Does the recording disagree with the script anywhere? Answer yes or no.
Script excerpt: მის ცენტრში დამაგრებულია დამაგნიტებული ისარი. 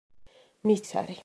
yes